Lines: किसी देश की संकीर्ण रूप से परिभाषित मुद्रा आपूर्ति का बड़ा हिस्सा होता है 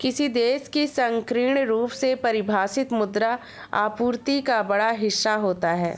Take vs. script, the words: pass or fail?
pass